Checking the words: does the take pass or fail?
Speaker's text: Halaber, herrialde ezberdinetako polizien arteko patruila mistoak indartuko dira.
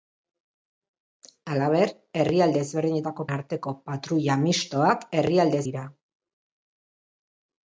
fail